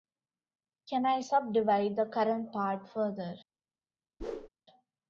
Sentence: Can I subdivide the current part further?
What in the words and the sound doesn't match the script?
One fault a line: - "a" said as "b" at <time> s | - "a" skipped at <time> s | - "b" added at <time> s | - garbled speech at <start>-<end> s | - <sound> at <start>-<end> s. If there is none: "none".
- whoosh at 4.2-4.5 s